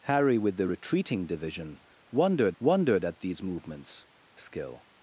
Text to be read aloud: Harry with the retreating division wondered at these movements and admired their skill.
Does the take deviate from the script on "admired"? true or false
true